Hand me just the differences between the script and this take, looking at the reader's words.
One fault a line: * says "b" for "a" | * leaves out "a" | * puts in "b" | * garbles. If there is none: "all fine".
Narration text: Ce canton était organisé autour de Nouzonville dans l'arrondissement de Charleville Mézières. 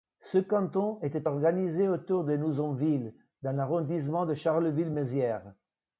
all fine